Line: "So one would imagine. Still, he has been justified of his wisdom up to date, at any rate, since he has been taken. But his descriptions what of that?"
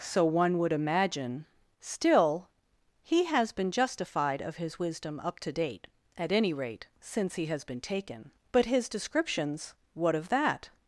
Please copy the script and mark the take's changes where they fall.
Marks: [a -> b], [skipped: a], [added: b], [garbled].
"So one would imagine. Still, he has been justified of his wisdom up to date, at any rate, since he has been taken. But his descriptions what of that?"